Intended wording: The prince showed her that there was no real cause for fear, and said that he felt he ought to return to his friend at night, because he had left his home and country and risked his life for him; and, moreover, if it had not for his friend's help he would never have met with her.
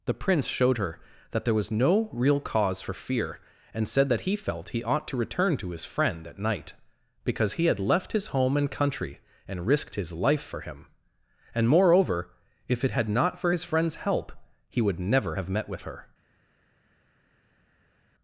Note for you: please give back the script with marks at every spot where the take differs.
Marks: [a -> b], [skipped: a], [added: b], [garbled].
The prince showed her that there was no real cause for fear, and said that he felt he ought to return to his friend at night, because he had left his home and country and risked his life for him; and, moreover, if it had not for his friend's help he would never have met with her.